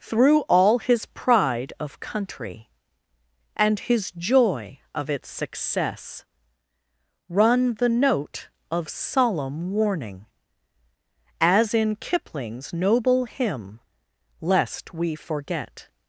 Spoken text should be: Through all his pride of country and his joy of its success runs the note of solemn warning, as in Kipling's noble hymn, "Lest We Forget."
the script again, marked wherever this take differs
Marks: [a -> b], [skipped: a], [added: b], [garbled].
Through all his pride of country and his joy of its success [runs -> run] the note of solemn warning, as in Kipling's noble hymn, "Lest We Forget."